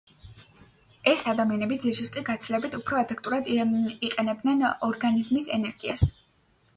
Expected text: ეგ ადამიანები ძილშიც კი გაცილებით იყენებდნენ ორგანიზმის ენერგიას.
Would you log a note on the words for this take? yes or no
yes